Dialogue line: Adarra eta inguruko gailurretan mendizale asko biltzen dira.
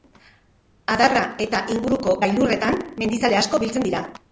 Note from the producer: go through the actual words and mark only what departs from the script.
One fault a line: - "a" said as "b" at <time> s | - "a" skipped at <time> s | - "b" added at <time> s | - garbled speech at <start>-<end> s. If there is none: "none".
none